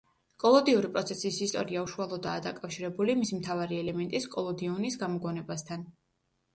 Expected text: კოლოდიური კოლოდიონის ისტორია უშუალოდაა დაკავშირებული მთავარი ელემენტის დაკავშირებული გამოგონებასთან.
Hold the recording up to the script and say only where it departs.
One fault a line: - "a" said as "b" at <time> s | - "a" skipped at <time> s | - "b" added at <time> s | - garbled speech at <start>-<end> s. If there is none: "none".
- "კოლოდიონის" said as "პროცესის" at 0.9 s
- "მისი" added at 3.2 s
- "დაკავშირებული" said as "კოლოდიონის" at 4.4 s